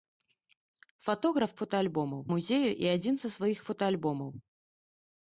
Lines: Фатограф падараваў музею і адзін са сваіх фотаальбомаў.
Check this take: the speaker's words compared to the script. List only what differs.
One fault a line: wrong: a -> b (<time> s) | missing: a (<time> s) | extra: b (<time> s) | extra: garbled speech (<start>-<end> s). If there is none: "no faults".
wrong: падараваў -> фотаальбомаў (1.6 s)